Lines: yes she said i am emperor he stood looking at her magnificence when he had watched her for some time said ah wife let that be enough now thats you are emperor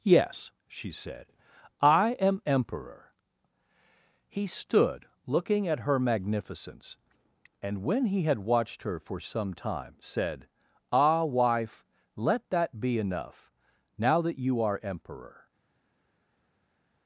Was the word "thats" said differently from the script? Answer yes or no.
yes